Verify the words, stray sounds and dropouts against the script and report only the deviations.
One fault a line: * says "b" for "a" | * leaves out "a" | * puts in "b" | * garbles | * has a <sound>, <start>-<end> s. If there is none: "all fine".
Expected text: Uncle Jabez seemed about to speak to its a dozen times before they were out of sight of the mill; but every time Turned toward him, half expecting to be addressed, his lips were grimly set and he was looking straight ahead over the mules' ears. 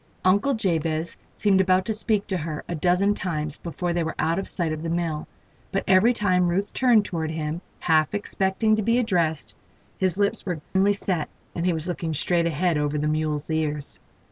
* says "her" for "its"
* puts in "Ruth"
* has a dropout, 10.6-10.8 s